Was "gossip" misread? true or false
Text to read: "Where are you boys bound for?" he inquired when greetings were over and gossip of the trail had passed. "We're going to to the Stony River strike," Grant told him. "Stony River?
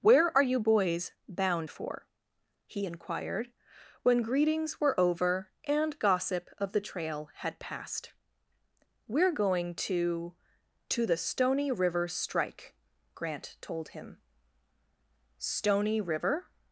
false